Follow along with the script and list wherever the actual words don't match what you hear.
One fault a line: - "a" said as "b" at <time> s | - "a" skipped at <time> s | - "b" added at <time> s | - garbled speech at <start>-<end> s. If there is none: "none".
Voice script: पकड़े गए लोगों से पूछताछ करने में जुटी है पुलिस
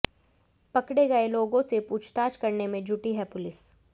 none